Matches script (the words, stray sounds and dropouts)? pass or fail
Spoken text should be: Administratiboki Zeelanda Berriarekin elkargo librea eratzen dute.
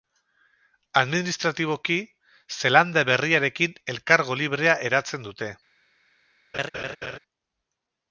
fail